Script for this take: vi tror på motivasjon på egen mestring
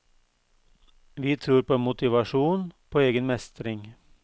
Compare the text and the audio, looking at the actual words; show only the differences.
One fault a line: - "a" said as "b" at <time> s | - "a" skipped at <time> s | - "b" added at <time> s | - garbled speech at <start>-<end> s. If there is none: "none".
none